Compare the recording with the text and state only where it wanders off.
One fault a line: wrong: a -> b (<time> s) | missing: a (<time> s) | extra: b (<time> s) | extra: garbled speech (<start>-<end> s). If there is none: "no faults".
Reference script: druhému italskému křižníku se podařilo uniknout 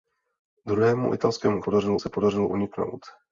wrong: křižníku -> podařilo (1.6 s)